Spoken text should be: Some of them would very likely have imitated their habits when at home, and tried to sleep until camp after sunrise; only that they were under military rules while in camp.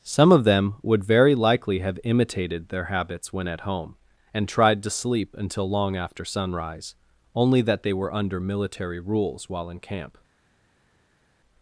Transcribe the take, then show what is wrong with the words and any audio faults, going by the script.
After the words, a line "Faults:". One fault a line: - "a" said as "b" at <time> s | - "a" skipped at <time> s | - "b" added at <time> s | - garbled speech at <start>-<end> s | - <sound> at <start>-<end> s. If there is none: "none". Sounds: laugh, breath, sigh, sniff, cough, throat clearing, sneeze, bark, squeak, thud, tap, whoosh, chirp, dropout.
Some of them would very likely have imitated their habits when at home, and tried to sleep until long after sunrise; only that they were under military rules while in camp.
Faults:
- "camp" said as "long" at 5.7 s